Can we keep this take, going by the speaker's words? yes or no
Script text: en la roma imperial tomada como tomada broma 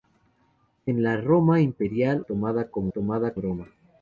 yes